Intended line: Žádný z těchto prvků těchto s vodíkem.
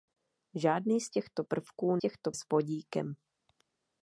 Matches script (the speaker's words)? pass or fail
pass